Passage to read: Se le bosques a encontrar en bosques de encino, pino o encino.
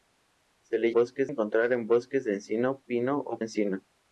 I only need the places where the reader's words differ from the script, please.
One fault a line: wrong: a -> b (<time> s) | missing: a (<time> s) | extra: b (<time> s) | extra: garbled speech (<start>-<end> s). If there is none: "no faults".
no faults